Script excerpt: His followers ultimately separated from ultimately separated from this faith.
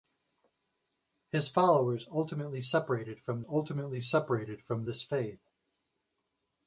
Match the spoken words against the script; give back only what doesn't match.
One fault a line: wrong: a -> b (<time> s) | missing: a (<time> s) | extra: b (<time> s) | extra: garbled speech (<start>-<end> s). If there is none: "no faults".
no faults